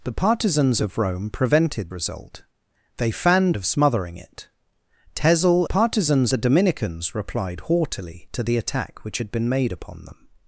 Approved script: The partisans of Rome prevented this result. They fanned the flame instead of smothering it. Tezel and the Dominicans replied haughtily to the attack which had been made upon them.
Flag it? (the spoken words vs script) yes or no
yes